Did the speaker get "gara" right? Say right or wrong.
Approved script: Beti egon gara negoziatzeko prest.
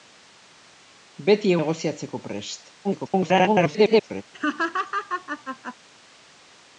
wrong